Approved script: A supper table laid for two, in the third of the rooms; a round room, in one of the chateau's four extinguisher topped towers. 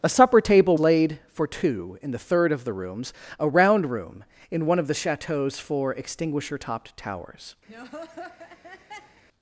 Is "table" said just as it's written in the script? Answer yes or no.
yes